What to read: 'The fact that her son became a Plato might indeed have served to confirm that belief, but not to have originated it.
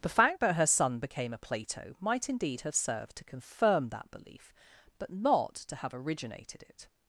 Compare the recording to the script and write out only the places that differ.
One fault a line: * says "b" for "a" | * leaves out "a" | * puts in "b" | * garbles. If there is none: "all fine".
all fine